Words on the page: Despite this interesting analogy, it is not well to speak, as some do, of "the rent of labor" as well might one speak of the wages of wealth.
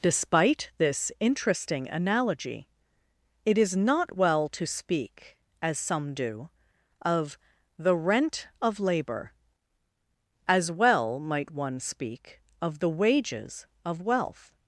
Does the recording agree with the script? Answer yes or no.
yes